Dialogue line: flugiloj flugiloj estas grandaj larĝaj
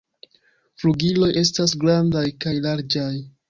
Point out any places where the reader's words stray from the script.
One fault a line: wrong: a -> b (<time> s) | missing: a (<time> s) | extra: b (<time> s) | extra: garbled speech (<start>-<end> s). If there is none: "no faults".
missing: flugiloj (1.3 s)
extra: kaj (2.5 s)